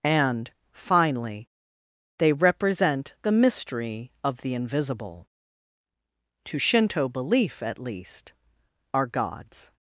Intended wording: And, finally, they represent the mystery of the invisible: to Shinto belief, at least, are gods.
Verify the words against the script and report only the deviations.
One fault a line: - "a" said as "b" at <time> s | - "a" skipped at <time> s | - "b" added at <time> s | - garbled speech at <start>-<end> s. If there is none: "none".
none